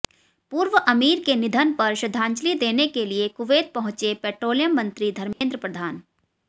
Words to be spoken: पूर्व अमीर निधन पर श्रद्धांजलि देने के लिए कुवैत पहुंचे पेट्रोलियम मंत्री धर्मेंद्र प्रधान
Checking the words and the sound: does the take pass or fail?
fail